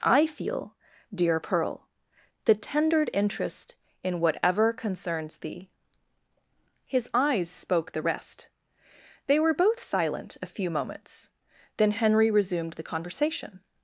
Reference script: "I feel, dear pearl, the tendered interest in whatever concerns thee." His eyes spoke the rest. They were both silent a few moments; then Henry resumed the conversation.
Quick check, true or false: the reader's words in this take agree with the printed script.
true